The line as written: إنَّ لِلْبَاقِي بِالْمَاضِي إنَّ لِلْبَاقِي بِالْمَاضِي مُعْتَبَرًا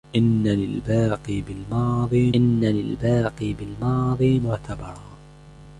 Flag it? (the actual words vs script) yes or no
no